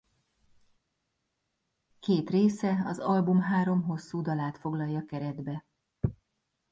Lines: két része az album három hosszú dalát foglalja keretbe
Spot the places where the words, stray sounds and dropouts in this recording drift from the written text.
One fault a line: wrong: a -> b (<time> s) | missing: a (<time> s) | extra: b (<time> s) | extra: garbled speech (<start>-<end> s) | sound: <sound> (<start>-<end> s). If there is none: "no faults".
no faults